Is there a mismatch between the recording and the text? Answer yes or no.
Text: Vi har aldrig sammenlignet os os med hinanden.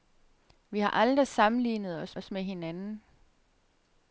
no